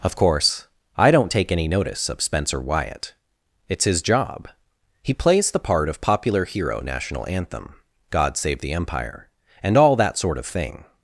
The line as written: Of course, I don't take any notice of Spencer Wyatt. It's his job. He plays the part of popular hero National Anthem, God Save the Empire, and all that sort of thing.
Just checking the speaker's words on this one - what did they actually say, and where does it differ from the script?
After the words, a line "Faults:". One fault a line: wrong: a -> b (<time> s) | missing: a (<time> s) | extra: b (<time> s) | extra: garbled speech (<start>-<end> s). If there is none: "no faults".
Of course, I don't take any notice of Spencer Wyatt. It's his job. He plays the part of popular hero National Anthem, God Save the Empire, and all that sort of thing.
Faults:
no faults